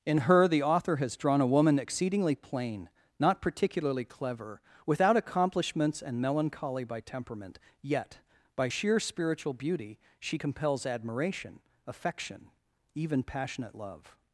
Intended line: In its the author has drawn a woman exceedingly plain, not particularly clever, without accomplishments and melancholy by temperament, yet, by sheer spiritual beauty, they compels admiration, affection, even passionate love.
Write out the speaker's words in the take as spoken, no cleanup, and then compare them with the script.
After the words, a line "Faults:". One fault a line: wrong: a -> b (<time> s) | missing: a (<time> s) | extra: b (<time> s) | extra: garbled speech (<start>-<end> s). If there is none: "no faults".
In her the author has drawn a woman exceedingly plain, not particularly clever, without accomplishments and melancholy by temperament, yet, by sheer spiritual beauty, she compels admiration, affection, even passionate love.
Faults:
wrong: its -> her (0.2 s)
wrong: they -> she (10.2 s)